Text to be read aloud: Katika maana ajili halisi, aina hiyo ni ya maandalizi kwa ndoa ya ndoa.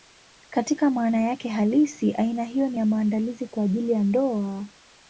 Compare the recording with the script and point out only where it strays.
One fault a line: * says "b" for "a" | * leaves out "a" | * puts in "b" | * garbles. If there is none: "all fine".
* says "yake" for "ajili"
* says "ajili" for "ndoa"